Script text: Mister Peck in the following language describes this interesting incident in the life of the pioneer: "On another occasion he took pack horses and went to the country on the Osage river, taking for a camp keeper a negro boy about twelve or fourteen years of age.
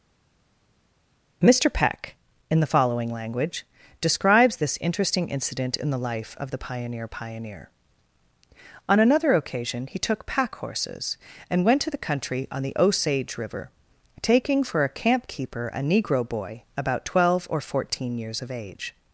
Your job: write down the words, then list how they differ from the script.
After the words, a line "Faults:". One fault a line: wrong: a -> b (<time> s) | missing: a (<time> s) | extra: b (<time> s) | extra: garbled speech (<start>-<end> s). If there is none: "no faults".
Mister Peck in the following language describes this interesting incident in the life of the pioneer pioneer: "On another occasion he took pack horses and went to the country on the Osage river, taking for a camp keeper a negro boy about twelve or fourteen years of age.
Faults:
extra: pioneer (7.1 s)